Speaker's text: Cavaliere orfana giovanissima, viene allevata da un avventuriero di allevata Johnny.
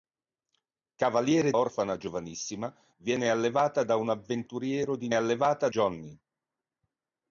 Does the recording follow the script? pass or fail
pass